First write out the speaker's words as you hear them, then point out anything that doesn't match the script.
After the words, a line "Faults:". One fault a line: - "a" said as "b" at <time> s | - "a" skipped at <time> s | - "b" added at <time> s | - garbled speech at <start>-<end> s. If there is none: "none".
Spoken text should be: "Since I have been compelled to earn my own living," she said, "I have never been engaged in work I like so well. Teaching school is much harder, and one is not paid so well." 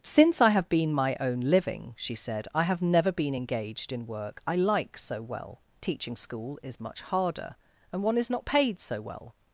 "Since I have been my own living," she said, "I have never been engaged in work I like so well. Teaching school is much harder, and one is not paid so well."
Faults:
- "compelled to earn" skipped at 0.9 s